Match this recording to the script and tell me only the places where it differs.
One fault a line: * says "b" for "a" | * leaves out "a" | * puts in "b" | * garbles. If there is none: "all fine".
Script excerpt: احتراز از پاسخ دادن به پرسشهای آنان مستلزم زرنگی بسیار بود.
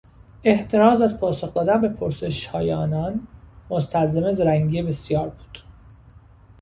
all fine